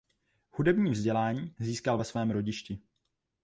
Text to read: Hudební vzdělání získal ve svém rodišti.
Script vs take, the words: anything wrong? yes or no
no